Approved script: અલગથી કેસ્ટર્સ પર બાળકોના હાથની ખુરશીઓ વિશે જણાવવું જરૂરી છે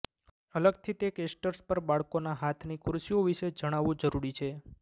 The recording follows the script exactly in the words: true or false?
false